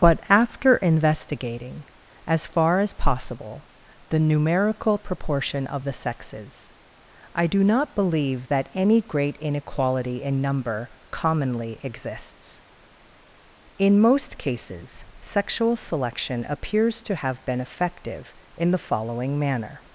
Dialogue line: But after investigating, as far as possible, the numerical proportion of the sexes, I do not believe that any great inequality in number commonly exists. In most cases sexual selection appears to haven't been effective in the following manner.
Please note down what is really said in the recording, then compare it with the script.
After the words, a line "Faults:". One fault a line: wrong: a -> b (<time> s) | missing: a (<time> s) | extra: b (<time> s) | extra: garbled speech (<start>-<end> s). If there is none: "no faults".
But after investigating, as far as possible, the numerical proportion of the sexes, I do not believe that any great inequality in number commonly exists. In most cases sexual selection appears to have been effective in the following manner.
Faults:
wrong: haven't -> have (17.1 s)